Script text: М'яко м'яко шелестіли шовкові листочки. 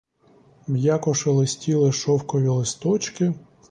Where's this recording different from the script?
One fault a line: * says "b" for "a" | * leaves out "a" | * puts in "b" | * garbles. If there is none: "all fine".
* leaves out "м'яко"